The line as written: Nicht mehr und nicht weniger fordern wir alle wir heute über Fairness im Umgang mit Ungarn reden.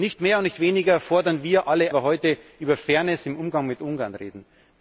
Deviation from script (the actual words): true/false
false